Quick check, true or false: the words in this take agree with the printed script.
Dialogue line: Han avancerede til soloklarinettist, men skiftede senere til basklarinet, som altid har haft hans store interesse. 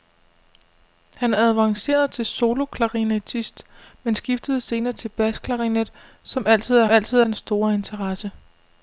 false